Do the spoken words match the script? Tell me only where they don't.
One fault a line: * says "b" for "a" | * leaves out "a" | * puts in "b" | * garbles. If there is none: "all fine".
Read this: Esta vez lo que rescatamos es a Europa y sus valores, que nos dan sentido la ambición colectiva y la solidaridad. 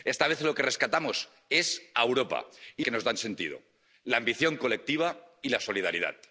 * leaves out "sus valores"